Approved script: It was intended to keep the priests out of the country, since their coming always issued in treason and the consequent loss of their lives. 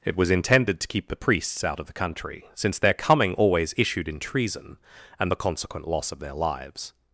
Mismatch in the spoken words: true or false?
false